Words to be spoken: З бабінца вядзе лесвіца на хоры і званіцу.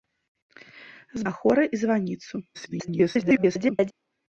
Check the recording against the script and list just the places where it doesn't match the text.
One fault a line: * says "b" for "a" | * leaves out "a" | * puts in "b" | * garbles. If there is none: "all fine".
* leaves out "бабінца вядзе лесвіца"
* garbles